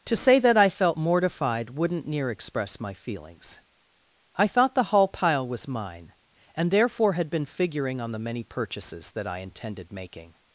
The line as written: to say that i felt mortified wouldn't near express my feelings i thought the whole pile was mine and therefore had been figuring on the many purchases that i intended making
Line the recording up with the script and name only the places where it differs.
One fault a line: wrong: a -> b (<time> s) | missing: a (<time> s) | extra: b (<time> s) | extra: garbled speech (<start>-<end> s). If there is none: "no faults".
wrong: whole -> hall (4.8 s)